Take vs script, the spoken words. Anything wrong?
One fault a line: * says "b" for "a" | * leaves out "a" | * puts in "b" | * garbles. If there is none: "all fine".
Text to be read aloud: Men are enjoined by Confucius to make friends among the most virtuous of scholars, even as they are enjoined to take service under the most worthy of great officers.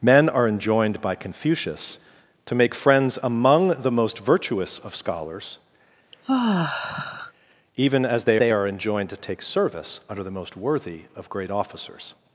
* puts in "they"